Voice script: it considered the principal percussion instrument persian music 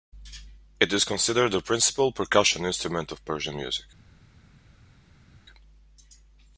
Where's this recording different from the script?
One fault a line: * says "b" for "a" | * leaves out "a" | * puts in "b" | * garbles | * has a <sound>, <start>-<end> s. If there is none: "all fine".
* puts in "is"
* puts in "of"